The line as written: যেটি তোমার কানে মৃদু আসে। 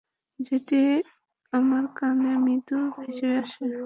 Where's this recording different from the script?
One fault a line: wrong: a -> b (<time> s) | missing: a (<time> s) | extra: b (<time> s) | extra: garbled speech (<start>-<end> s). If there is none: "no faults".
wrong: তোমার -> আমার (1.5 s)
extra: ভেসে (3.0 s)